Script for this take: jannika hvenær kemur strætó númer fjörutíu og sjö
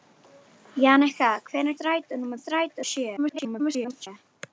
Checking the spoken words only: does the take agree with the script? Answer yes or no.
no